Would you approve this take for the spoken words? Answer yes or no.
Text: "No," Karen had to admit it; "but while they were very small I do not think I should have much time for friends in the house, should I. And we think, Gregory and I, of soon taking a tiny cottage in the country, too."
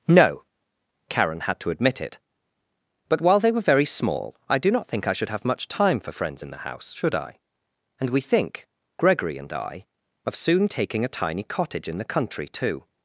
yes